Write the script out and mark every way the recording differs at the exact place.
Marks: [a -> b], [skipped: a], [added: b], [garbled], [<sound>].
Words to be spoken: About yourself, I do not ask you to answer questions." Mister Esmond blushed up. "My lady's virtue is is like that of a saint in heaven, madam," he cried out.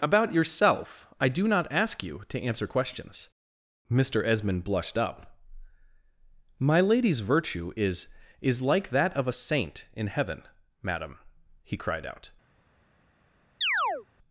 About yourself, I do not ask you to answer questions." Mister Esmond blushed up. "My lady's virtue is is like that of a saint in heaven, madam," he cried out. [chirp]